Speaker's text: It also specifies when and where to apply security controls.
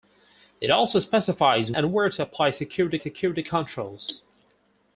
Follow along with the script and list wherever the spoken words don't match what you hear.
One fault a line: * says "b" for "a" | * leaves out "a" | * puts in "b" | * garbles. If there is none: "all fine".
* leaves out "when"
* puts in "security"